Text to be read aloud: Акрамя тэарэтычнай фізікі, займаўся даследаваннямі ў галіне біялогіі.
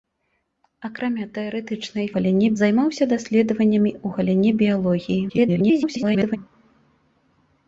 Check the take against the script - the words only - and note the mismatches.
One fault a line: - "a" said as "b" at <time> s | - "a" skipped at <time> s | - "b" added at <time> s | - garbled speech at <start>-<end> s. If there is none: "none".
- "фізікі" said as "галіне" at 2.2 s
- garbled speech at 5.3-6.4 s